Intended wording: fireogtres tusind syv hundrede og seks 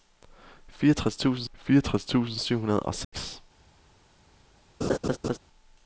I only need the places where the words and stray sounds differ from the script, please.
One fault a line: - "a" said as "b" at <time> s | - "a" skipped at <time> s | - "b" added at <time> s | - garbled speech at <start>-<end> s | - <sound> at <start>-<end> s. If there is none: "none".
- "fireogtres tusind" added at 1.5 s
- dropout at 3.0-3.1 s
- laugh at 4.8-5.4 s